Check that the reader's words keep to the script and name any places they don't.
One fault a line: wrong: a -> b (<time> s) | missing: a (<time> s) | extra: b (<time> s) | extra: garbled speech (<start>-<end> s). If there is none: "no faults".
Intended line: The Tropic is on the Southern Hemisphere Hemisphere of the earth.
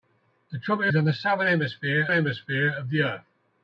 no faults